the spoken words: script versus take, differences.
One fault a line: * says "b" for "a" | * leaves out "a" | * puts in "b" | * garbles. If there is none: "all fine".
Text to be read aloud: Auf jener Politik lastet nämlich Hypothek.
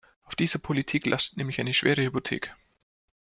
* says "dieser" for "jener"
* puts in "eine schwere"